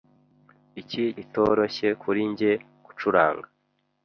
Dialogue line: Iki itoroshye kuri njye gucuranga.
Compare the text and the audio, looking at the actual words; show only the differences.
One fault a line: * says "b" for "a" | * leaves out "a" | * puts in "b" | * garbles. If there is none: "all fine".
all fine